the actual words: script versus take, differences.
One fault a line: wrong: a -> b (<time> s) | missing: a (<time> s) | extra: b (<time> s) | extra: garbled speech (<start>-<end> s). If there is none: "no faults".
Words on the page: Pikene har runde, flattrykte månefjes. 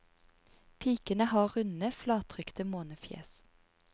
no faults